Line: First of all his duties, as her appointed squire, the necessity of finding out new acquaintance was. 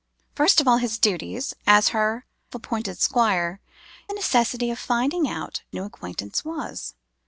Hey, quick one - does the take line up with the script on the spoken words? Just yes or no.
yes